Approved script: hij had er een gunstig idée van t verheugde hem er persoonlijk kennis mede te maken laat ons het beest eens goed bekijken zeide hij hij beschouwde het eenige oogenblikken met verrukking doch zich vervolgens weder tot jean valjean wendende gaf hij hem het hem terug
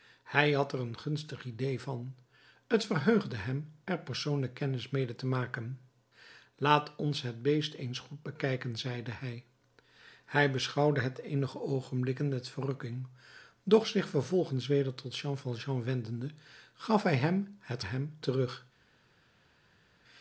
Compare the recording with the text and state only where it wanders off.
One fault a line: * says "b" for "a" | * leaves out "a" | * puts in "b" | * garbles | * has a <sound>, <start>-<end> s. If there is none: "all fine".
all fine